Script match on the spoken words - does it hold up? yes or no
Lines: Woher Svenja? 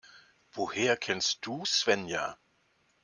no